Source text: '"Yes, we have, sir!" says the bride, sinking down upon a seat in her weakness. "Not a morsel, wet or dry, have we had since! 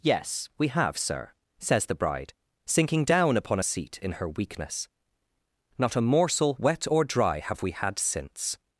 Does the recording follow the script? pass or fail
pass